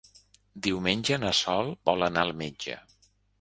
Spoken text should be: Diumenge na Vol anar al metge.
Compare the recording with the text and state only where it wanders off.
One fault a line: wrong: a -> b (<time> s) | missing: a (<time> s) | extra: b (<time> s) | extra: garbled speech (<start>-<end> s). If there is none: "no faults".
extra: Sol (1.4 s)